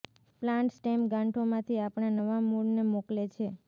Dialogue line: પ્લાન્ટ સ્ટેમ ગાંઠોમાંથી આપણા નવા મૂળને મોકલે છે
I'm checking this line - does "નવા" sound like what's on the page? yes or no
yes